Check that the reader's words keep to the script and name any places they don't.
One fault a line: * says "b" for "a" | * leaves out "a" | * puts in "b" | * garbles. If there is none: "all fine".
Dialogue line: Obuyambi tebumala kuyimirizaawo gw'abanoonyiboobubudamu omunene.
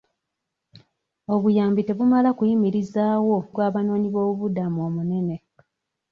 all fine